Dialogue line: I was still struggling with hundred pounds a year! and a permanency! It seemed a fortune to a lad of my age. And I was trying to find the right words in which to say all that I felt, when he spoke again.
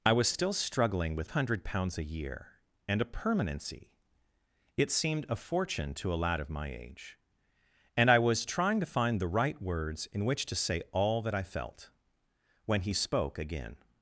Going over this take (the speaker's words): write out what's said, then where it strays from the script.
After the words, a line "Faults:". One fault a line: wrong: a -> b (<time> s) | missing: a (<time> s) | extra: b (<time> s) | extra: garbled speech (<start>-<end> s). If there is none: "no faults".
I was still struggling with hundred pounds a year! and a permanency! It seemed a fortune to a lad of my age. And I was trying to find the right words in which to say all that I felt, when he spoke again.
Faults:
no faults